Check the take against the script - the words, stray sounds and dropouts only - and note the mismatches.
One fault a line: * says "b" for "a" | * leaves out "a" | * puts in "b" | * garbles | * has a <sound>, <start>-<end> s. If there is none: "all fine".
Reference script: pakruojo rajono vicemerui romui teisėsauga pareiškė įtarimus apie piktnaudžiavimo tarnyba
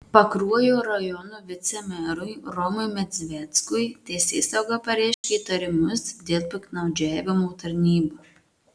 * puts in "medzveckui"
* has a dropout, 5.1-5.2 s
* says "dėl" for "apie"